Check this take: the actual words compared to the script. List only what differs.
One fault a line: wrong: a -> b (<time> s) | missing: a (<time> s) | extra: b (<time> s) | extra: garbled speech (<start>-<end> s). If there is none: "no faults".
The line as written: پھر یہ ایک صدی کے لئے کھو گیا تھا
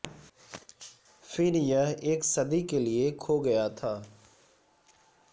no faults